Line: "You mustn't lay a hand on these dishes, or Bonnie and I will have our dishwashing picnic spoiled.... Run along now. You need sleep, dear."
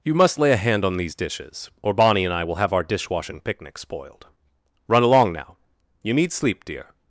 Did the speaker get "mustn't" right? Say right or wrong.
wrong